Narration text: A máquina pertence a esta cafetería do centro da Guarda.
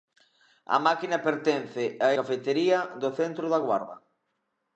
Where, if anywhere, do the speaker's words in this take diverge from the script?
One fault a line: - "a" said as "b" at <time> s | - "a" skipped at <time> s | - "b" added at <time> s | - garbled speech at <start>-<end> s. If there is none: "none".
- "esta" skipped at 2.1 s